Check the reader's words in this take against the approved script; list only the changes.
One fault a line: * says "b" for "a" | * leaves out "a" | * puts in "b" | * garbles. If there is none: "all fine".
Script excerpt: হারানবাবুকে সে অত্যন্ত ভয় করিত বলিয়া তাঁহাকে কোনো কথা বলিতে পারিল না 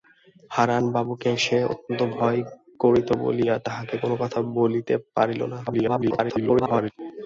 * garbles